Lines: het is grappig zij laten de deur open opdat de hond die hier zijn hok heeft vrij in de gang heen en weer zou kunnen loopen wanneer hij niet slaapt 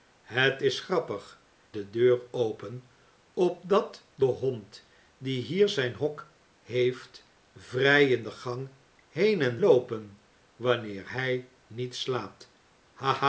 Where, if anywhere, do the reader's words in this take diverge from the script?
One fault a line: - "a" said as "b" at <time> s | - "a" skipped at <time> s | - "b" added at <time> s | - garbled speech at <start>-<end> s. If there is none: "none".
- "zij laten" skipped at 1.4 s
- "weer zou kunnen" skipped at 9.6 s